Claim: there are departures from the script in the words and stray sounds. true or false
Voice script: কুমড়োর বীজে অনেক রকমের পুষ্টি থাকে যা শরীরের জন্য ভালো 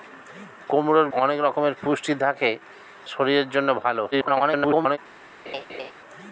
true